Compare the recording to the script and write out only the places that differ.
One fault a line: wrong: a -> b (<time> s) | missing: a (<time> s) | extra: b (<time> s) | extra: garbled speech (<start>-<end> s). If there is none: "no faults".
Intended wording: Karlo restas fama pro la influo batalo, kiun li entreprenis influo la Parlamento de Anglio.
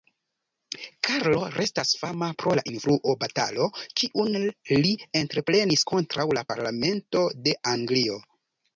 wrong: influo -> kontraŭ (5.9 s)